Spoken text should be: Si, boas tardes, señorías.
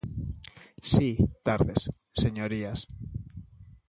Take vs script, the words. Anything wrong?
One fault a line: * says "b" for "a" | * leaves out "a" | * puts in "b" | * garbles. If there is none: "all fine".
* leaves out "boas"